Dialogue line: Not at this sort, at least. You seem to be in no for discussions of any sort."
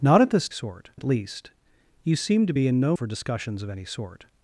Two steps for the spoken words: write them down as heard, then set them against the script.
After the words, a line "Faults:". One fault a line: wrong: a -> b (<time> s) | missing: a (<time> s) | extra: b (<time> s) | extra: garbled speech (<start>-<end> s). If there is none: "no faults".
Not at this sort, at least. You seem to be in no for discussions of any sort."
Faults:
no faults